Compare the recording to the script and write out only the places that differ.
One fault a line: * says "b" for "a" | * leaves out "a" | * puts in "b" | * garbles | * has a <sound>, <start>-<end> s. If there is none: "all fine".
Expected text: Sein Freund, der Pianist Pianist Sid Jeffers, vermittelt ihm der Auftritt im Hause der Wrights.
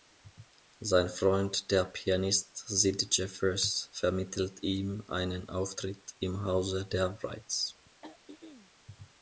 * leaves out "Pianist"
* says "einen" for "der"
* has a throat clearing, 8.0-8.7 s